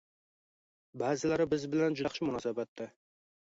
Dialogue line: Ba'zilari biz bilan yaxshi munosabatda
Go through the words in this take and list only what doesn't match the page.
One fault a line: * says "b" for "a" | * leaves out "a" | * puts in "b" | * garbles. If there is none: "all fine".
all fine